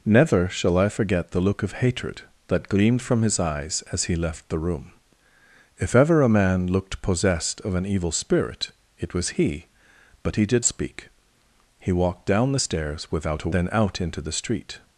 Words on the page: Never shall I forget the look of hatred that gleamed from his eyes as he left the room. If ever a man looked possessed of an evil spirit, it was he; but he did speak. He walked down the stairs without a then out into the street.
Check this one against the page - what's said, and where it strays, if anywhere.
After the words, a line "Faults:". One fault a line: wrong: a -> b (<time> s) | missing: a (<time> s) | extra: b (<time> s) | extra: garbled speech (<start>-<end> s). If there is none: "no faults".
Never shall I forget the look of hatred that gleamed from his eyes as he left the room. If ever a man looked possessed of an evil spirit, it was he; but he did speak. He walked down the stairs without a then out into the street.
Faults:
no faults